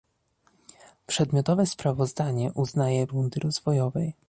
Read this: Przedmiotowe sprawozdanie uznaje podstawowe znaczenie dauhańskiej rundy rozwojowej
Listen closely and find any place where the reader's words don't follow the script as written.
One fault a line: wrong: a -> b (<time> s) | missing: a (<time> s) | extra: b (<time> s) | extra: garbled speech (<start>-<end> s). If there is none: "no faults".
missing: podstawowe znaczenie dauhańskiej (3.1 s)